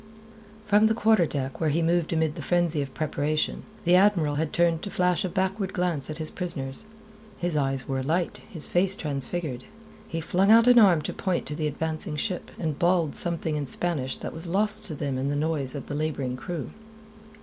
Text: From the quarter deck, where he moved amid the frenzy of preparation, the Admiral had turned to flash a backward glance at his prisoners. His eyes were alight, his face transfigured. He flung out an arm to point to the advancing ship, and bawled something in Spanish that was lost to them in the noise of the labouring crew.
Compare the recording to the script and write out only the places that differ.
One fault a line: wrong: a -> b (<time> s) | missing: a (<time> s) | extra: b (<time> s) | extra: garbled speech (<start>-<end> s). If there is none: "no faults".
no faults